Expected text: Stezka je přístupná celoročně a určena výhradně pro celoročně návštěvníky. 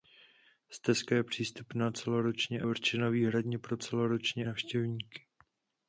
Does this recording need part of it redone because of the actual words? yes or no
no